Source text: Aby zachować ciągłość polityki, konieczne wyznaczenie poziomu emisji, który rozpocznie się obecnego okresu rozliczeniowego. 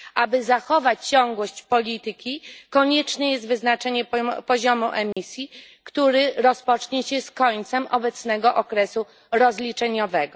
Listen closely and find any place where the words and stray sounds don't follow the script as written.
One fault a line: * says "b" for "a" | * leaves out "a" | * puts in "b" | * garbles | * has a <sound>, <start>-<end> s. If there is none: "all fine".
* puts in "jest"
* has a dropout, 5.1-5.2 s
* puts in "z końcem"